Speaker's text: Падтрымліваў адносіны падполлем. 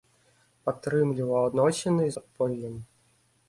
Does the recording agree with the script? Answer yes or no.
yes